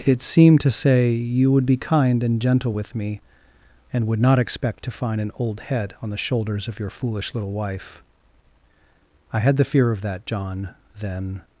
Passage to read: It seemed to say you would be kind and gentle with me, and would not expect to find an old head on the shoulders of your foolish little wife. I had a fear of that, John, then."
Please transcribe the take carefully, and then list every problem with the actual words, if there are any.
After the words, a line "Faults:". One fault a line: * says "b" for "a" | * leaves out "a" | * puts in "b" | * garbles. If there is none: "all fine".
It seemed to say you would be kind and gentle with me, and would not expect to find an old head on the shoulders of your foolish little wife. I had the fear of that, John, then."
Faults:
* says "the" for "a"